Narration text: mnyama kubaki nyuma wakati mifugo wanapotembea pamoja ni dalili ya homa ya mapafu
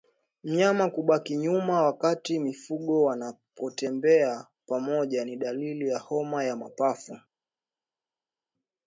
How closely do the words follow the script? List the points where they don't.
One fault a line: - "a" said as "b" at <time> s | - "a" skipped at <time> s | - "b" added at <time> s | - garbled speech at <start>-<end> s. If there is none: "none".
none